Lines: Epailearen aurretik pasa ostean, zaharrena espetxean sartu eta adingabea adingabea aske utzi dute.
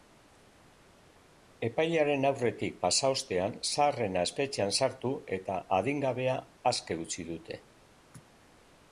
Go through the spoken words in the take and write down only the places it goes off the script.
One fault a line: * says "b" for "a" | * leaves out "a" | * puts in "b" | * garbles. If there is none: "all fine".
* leaves out "adingabea"